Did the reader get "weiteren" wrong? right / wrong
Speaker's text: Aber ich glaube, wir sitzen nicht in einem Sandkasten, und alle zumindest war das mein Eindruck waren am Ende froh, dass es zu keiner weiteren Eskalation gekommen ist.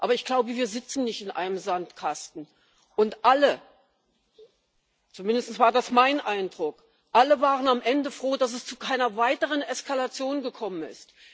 right